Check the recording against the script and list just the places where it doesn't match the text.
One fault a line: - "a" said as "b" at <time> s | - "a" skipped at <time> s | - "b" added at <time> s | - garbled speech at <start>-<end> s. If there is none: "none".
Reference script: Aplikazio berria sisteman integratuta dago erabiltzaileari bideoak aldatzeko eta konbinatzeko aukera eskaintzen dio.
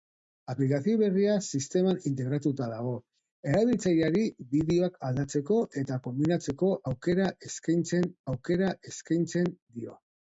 - "aukera eskaintzen" added at 8.3 s